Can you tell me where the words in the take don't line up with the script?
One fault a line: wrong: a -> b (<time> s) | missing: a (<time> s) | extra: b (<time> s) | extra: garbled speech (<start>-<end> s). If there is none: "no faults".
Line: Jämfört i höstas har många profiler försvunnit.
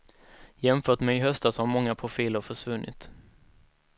extra: med (1.0 s)